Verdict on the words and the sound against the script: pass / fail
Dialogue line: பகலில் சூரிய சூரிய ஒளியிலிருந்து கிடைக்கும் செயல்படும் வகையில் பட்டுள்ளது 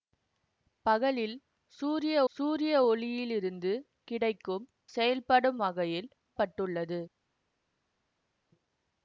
pass